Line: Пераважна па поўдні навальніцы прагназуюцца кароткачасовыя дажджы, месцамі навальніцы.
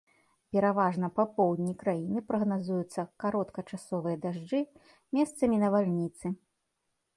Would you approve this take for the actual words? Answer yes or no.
no